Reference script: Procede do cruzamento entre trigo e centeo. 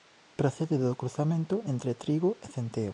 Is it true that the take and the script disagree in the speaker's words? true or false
false